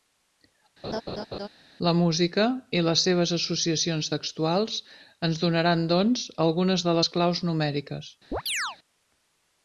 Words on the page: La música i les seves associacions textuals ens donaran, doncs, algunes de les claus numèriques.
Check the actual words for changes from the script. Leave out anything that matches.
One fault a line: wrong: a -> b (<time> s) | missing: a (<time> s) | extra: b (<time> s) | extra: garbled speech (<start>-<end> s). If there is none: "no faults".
no faults